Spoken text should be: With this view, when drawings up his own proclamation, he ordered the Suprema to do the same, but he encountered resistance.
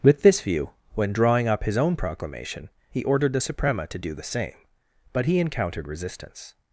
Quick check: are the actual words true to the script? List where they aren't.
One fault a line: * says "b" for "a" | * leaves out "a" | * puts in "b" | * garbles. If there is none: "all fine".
* says "drawing" for "drawings"